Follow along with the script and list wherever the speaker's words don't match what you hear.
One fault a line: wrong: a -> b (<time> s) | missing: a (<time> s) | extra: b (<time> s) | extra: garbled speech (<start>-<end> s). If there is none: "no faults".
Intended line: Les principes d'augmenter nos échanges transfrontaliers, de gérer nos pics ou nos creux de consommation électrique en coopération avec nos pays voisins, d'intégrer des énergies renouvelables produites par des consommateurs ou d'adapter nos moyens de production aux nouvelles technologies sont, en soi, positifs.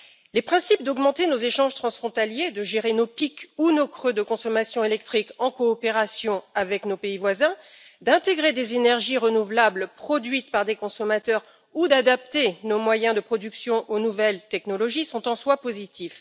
no faults